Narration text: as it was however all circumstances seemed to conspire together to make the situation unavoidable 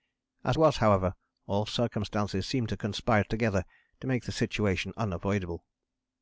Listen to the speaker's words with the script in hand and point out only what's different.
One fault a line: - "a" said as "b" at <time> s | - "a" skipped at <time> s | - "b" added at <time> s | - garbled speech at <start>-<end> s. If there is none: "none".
- "it" skipped at 0.6 s